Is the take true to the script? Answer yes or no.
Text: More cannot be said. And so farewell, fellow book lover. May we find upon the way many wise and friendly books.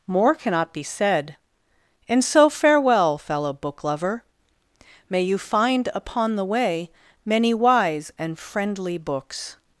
no